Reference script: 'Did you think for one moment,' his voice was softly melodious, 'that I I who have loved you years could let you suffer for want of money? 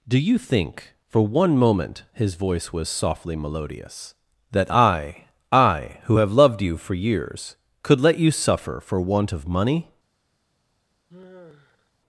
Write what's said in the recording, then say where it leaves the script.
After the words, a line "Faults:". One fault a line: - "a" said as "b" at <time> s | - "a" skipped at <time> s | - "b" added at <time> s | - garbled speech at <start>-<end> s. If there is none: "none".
'Do you think for one moment,' his voice was softly melodious, 'that I I who have loved you for years could let you suffer for want of money?
Faults:
- "Did" said as "Do" at 0.1 s
- "for" added at 6.8 s